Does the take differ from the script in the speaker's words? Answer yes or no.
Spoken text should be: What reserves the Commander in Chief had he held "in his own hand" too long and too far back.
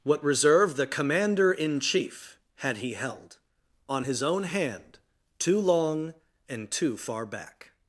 yes